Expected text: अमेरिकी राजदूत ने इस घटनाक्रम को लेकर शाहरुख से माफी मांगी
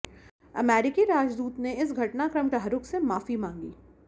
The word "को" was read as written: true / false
false